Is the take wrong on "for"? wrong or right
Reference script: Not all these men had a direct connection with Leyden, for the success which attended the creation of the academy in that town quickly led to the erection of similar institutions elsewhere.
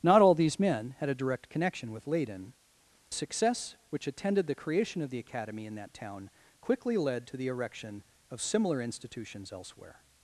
wrong